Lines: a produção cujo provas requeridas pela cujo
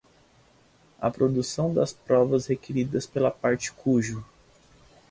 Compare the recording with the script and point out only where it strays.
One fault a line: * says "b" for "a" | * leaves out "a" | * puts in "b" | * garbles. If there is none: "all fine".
* says "das" for "cujo"
* puts in "parte"